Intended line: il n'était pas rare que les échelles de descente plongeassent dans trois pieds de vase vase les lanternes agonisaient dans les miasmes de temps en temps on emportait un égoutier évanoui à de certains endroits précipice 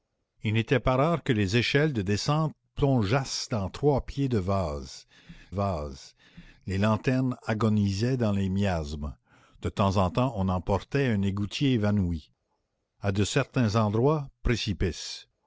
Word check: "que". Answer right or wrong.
right